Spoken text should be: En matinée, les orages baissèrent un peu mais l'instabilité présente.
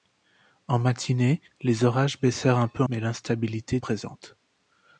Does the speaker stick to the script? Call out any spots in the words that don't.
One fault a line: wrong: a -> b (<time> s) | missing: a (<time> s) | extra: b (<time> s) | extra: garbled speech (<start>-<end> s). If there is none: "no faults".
no faults